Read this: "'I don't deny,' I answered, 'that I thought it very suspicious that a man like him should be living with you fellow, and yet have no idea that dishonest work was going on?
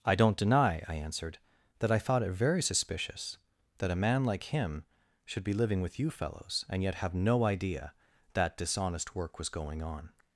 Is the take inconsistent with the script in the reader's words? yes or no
yes